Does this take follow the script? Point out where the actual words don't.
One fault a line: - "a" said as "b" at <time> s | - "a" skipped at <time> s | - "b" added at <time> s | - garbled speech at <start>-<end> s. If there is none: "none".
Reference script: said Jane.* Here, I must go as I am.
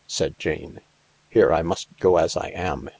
none